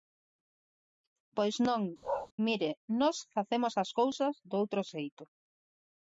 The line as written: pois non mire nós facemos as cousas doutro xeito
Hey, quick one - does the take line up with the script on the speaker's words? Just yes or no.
yes